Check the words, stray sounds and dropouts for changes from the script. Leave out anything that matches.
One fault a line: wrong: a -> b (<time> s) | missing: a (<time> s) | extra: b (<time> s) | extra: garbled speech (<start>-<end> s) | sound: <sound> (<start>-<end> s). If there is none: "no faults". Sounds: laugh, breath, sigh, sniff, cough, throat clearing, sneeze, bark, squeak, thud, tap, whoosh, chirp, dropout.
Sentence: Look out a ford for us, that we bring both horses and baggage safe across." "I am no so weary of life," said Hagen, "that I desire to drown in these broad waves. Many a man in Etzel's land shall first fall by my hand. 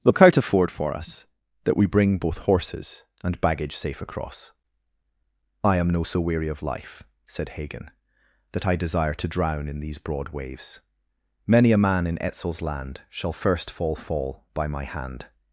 extra: fall (14.0 s)